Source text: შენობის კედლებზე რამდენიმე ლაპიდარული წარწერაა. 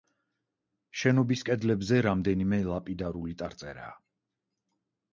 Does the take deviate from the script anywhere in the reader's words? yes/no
no